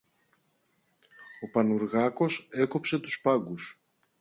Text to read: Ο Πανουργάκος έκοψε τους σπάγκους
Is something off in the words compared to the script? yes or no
no